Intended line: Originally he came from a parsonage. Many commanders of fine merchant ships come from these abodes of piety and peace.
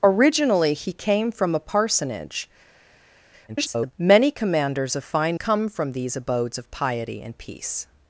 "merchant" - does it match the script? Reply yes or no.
no